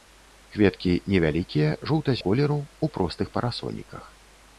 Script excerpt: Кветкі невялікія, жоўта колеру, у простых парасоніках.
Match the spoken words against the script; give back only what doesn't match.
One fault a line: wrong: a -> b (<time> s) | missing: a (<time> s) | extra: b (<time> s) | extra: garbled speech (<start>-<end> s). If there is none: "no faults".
no faults